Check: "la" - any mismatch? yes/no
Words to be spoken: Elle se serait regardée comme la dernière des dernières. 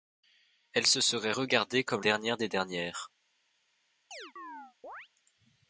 yes